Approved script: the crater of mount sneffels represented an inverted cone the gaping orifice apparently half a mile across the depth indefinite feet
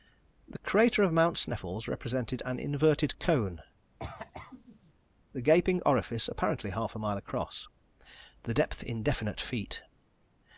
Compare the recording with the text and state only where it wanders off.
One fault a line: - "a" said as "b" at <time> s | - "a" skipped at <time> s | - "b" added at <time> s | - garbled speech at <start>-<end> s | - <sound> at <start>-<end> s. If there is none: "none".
- cough at 4.0-4.9 s